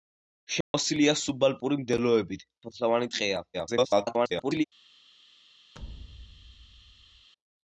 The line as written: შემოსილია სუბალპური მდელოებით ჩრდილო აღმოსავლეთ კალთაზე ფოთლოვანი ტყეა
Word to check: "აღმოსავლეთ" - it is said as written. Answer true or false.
false